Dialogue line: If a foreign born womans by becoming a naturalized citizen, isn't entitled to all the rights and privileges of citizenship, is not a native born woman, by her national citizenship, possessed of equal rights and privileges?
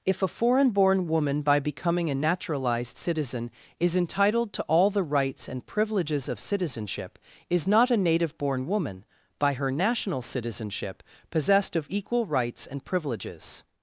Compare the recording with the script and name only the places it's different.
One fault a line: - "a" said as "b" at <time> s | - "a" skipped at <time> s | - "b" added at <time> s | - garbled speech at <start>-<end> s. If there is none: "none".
- "womans" said as "woman" at 1.1 s
- "isn't" said as "is" at 3.8 s